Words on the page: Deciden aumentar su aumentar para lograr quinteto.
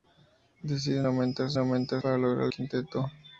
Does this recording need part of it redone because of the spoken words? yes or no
no